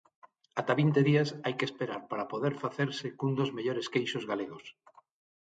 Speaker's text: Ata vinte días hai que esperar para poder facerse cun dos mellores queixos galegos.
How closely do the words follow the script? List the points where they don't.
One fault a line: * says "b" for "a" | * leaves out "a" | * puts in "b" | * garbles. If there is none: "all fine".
all fine